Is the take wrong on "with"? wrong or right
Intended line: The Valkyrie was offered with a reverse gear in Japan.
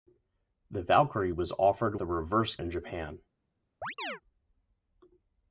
wrong